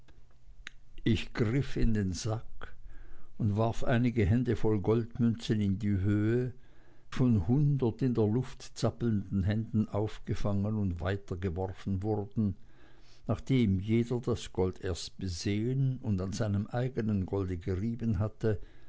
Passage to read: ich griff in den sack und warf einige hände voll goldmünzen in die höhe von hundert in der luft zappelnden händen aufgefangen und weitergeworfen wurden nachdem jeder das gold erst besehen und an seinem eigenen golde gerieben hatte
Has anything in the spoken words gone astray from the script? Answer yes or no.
no